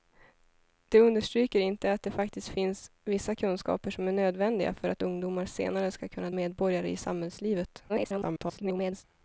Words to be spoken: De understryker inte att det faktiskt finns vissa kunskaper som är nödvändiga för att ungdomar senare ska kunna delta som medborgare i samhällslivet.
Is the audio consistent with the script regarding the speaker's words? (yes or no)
no